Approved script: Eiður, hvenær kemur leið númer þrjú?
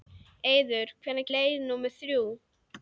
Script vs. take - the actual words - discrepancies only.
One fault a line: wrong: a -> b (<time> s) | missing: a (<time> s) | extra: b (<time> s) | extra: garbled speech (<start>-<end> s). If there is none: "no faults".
missing: kemur (1.3 s)